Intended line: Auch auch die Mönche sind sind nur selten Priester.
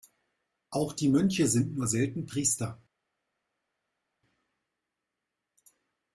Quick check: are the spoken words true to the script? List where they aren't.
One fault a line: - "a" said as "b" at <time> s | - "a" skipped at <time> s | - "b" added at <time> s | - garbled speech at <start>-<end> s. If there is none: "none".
- "auch" skipped at 0.9 s
- "sind" skipped at 1.8 s